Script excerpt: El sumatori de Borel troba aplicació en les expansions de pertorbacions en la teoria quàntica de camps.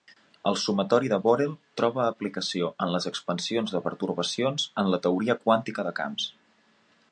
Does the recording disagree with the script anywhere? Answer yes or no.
no